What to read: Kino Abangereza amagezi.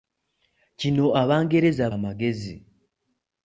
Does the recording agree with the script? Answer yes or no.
yes